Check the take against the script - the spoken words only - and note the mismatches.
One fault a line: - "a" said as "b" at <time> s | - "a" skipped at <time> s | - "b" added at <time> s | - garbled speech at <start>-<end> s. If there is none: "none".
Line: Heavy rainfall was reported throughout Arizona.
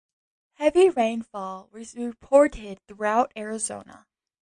none